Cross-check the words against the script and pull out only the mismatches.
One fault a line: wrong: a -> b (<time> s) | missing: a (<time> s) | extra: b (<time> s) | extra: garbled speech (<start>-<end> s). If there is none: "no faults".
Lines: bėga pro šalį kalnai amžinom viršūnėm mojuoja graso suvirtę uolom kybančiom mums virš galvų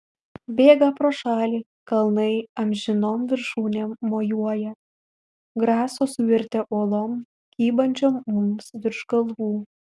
no faults